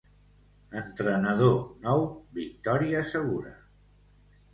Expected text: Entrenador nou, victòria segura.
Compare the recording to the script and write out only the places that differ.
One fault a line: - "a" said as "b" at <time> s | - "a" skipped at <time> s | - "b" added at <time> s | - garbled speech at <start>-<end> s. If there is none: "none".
none